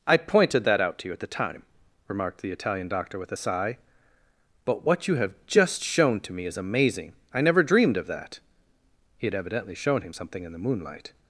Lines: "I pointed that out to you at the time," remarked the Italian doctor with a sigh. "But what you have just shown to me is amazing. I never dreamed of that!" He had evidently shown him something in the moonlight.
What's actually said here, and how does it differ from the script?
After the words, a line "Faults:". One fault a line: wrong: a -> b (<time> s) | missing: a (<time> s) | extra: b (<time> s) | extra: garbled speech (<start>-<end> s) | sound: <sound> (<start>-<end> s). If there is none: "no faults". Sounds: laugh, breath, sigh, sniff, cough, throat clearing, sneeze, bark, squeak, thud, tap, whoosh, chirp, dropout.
"I pointed that out to you at the time," remarked the Italian doctor with a sigh. "But what you have just shown to me is amazing. I never dreamed of that!" He had evidently shown him something in the moonlight.
Faults:
no faults